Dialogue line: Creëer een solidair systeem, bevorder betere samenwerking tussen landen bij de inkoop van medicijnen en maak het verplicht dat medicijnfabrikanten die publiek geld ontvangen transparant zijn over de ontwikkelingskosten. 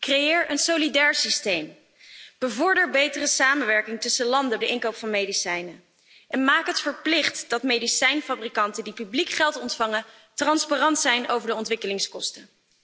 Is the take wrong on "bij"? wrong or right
wrong